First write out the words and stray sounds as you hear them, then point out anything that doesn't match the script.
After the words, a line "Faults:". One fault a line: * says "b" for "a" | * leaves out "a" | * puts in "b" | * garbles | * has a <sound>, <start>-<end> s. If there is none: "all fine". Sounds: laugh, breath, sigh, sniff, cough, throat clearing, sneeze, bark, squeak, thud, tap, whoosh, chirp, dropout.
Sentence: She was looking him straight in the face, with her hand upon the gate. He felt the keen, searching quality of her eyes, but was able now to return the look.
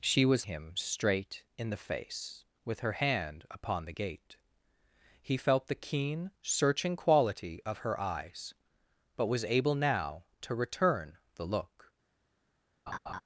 She was him straight in the face, with her hand upon the gate. He felt the keen, searching quality of her eyes, but was able now to return the look.
Faults:
* leaves out "looking"
* has a laugh, 12.9-13.2 s